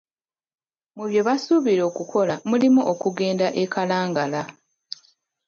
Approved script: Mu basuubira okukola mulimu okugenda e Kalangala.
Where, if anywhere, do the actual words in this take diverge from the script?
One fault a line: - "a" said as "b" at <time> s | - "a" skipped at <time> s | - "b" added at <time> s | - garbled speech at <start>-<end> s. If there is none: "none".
- "bye" added at 1.1 s